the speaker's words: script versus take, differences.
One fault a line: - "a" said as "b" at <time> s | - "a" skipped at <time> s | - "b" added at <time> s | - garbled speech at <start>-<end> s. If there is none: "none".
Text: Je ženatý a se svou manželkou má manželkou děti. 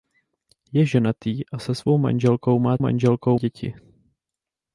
none